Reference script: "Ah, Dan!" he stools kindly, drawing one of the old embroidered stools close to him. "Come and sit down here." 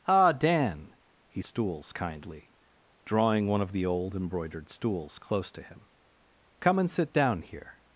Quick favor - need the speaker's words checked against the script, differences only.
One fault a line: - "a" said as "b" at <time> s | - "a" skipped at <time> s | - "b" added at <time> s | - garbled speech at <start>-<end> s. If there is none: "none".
none